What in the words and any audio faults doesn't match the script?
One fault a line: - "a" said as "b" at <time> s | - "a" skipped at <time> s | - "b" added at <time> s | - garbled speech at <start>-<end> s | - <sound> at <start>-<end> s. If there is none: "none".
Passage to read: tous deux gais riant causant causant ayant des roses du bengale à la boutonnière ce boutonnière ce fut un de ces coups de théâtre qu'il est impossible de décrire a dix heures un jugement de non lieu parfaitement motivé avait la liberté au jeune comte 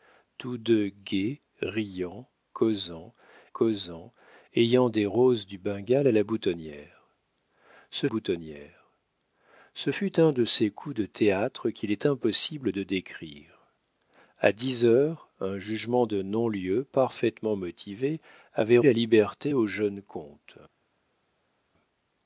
none